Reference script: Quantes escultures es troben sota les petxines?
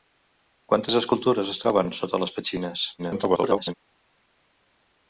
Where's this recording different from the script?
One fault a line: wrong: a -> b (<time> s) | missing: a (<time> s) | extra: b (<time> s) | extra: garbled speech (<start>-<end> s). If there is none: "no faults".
extra: garbled speech (3.0-3.7 s)